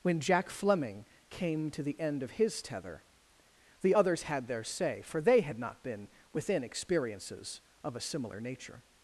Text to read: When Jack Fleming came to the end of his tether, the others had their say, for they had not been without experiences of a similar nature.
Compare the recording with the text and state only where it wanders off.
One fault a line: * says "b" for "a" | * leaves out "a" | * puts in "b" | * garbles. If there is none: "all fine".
* says "within" for "without"